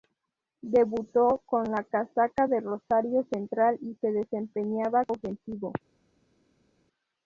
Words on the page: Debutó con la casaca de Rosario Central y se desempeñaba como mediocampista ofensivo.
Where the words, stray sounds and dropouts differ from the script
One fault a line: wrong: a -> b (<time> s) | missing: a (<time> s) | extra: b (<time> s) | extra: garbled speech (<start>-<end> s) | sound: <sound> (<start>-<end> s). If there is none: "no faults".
missing: como mediocampista (5.0 s)